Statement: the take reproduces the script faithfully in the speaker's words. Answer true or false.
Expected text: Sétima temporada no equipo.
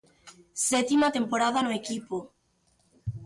true